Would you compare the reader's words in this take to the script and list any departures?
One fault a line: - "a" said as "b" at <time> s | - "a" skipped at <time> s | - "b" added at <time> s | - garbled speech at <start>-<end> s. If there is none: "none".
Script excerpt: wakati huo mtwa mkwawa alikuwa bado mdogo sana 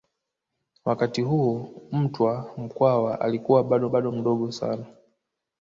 - "bado" added at 3.9 s